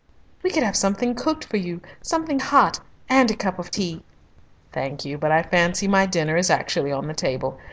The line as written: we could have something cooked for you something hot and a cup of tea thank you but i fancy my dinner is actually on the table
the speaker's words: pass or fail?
pass